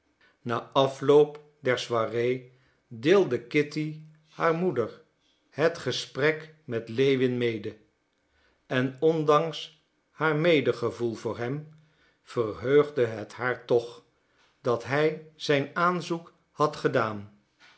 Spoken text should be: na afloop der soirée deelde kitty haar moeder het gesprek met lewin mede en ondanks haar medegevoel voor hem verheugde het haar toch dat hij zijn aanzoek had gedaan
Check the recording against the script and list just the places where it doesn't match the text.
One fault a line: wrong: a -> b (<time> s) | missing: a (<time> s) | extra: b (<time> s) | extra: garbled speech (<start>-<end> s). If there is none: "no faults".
no faults